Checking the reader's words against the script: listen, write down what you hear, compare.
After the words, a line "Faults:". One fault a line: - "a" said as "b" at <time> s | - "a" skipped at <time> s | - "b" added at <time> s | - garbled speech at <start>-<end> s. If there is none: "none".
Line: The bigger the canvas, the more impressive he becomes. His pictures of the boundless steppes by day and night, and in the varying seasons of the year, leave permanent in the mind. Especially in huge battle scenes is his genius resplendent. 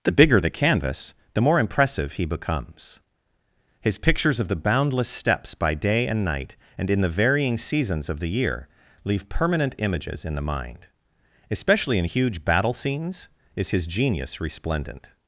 The bigger the canvas, the more impressive he becomes. His pictures of the boundless steppes by day and night, and in the varying seasons of the year, leave permanent images in the mind. Especially in huge battle scenes is his genius resplendent.
Faults:
- "images" added at 9.8 s